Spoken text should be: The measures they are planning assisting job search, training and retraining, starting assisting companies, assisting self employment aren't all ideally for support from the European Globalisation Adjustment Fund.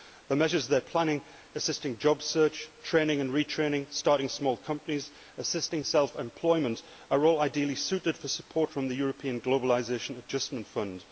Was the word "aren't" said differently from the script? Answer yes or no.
yes